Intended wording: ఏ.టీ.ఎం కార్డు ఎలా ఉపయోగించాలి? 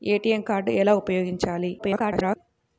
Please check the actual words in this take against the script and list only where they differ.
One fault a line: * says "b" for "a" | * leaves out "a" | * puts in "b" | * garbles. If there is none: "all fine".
* garbles